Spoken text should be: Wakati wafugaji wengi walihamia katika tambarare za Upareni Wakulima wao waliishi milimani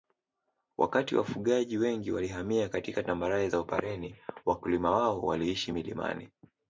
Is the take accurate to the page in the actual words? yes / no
yes